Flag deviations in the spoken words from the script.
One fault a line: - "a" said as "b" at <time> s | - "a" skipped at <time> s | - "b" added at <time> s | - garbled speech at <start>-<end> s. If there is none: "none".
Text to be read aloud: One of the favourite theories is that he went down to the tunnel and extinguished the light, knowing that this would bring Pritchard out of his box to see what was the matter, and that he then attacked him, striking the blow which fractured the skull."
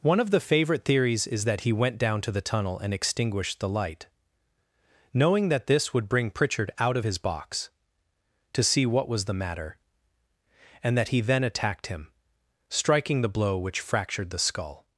none